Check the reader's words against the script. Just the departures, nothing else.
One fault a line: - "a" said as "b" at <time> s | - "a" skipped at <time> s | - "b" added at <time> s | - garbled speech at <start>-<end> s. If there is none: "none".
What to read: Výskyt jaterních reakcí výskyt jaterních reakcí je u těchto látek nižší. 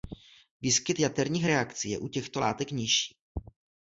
- "výskyt jaterních reakcí" skipped at 1.9 s